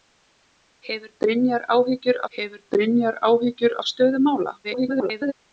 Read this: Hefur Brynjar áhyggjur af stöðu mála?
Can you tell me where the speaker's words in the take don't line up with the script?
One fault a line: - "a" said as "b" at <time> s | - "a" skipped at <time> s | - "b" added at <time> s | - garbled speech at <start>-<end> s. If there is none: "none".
- "hefur Brynjar áhyggjur" added at 2.4 s
- garbled speech at 4.6-5.3 s